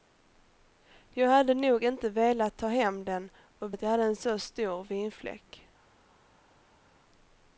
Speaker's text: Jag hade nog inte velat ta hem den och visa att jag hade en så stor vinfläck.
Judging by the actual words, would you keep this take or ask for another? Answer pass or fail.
fail